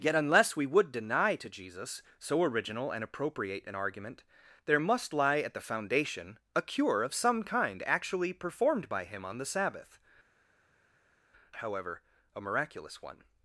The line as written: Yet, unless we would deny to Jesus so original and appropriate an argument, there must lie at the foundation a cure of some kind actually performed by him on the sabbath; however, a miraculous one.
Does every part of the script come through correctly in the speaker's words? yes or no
yes